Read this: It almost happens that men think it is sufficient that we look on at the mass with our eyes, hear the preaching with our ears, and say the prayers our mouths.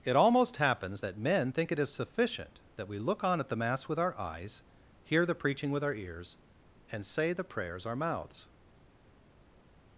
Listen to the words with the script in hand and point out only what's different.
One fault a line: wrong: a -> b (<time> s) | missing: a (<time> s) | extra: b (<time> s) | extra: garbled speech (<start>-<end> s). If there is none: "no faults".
no faults